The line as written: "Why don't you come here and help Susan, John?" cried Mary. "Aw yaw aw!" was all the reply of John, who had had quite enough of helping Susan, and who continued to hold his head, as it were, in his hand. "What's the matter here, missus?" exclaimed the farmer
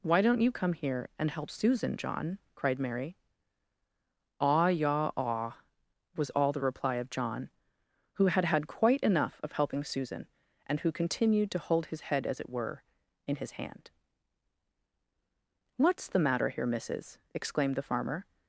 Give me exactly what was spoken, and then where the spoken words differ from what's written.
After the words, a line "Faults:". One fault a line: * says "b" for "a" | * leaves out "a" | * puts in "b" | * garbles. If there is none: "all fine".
"Why don't you come here and help Susan, John?" cried Mary. "Aw yaw aw!" was all the reply of John, who had had quite enough of helping Susan, and who continued to hold his head, as it were, in his hand. "What's the matter here, missus?" exclaimed the farmer
Faults:
all fine